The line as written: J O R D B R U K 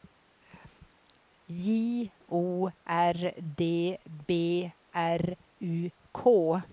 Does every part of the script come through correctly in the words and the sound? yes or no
yes